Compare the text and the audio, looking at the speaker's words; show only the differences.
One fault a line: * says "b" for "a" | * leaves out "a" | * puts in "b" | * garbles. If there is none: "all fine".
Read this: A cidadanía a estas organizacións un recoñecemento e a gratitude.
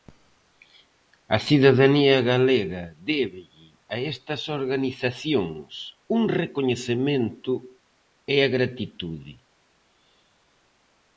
* puts in "galega débelle"